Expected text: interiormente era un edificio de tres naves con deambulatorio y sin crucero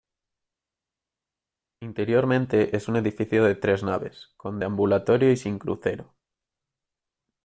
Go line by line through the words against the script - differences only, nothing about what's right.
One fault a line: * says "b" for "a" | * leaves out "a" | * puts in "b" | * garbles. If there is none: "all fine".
* says "es" for "era"